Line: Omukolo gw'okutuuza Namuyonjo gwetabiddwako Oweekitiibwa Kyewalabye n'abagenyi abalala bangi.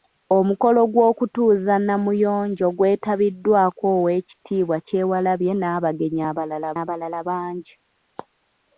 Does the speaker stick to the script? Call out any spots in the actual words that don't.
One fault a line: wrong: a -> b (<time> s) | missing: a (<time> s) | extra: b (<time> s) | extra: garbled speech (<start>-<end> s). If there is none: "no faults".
extra: abalala (6.8 s)